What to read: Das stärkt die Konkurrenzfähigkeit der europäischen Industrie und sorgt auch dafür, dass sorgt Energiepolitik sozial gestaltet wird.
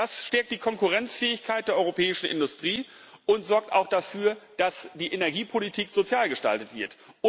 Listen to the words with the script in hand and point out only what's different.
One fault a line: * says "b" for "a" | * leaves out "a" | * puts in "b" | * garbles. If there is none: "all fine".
* says "die" for "sorgt"